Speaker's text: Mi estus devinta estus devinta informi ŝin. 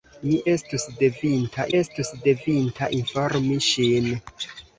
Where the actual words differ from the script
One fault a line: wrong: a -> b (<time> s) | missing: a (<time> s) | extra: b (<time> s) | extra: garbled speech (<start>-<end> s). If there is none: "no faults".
no faults